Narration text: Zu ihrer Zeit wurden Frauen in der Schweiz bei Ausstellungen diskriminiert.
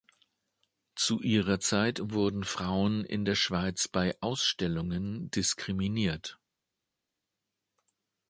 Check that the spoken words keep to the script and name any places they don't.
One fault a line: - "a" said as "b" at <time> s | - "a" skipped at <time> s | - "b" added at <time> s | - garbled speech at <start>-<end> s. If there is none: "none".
none